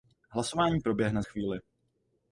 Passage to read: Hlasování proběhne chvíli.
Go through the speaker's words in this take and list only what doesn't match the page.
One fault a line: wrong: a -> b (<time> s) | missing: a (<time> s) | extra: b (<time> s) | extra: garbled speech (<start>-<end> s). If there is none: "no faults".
no faults